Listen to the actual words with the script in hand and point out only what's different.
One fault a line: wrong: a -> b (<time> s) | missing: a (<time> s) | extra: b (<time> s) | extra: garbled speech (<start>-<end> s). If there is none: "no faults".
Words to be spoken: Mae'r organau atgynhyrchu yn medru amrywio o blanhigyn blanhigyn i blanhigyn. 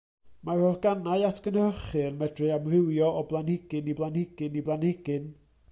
no faults